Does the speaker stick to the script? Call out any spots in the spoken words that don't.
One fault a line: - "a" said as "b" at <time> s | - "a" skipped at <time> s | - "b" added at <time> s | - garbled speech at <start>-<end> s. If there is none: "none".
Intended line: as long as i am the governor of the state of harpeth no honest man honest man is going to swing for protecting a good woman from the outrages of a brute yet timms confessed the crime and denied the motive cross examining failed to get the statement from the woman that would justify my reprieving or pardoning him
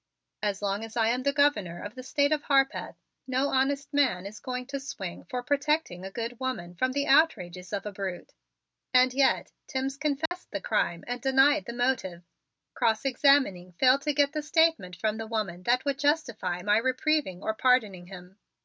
- "honest man" skipped at 4.2 s
- "and" added at 8.9 s